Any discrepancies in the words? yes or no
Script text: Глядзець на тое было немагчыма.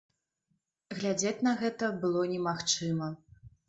yes